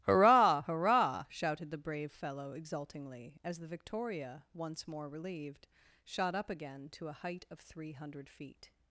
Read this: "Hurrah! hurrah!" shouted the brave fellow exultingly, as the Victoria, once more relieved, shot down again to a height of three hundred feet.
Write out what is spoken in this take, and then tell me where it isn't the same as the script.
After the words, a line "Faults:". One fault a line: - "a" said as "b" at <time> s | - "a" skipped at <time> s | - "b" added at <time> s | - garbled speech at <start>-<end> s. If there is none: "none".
"Hurrah! hurrah!" shouted the brave fellow exultingly, as the Victoria, once more relieved, shot up again to a height of three hundred feet.
Faults:
- "down" said as "up" at 6.3 s